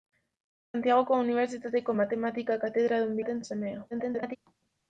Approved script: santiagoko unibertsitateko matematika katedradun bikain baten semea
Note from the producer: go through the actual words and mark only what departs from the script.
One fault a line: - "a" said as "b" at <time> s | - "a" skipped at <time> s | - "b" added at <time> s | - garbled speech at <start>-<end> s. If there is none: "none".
- "bikain" skipped at 3.2 s
- garbled speech at 3.9-4.4 s